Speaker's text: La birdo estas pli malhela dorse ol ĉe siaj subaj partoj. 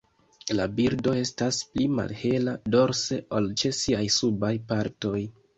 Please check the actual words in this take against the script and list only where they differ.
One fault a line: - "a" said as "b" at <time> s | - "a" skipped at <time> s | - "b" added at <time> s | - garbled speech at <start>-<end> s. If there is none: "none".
none